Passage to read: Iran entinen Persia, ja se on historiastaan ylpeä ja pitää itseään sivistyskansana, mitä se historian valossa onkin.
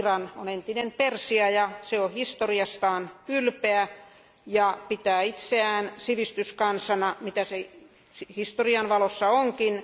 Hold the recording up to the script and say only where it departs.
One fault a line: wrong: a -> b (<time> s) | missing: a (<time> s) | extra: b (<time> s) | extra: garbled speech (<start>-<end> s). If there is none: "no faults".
extra: on (0.3 s)